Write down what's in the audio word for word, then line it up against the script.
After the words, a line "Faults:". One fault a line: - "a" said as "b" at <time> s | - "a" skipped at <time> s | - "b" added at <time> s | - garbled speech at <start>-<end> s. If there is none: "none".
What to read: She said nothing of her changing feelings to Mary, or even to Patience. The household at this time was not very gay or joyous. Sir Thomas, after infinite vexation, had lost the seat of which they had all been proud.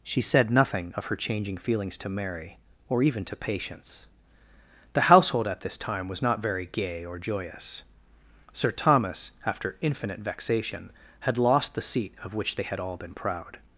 She said nothing of her changing feelings to Mary, or even to Patience. The household at this time was not very gay or joyous. Sir Thomas, after infinite vexation, had lost the seat of which they had all been proud.
Faults:
none